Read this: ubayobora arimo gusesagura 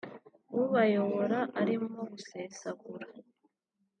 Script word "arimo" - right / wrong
right